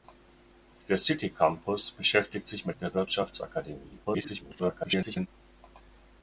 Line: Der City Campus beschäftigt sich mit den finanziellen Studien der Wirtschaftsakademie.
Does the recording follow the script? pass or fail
fail